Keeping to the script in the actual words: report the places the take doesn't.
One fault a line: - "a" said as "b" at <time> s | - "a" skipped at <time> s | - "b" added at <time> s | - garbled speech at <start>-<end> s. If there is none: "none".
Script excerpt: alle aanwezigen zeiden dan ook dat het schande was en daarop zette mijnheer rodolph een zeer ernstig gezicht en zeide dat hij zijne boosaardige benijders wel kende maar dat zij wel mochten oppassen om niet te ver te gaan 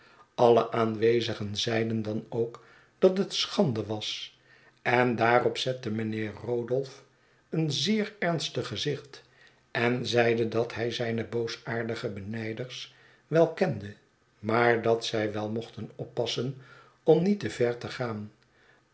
none